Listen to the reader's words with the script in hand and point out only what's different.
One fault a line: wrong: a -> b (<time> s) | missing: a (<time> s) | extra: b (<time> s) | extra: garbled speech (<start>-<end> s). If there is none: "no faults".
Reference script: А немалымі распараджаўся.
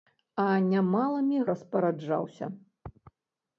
no faults